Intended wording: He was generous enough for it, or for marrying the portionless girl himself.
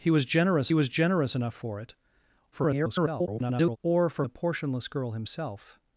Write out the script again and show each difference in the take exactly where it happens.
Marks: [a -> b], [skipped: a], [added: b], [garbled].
He was generous [added: was generous] enough for it, [garbled] or for [skipped: marrying] the portionless girl himself.